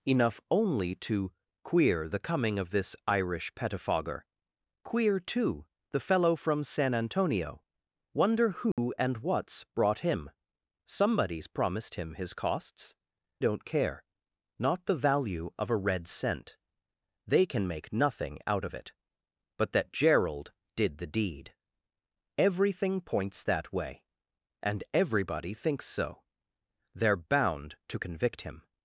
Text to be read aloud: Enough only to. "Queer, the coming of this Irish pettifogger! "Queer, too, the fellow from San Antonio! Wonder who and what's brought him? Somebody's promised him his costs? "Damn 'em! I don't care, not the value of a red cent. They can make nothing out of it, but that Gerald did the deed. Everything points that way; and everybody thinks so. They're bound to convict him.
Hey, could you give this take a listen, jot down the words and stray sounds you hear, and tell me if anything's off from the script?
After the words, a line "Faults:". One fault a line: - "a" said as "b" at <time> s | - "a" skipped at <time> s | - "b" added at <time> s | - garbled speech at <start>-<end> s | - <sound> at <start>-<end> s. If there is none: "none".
Enough only to. "Queer, the coming of this Irish pettifogger! "Queer, too, the fellow from San Antonio! Wonder who and what's brought him? Somebody's promised him his costs? "Don't care, not the value of a red cent. They can make nothing out of it, but that Gerald did the deed. Everything points that way; and everybody thinks so. They're bound to convict him.
Faults:
- dropout at 8.7-8.8 s
- "Damn em I" skipped at 12.9 s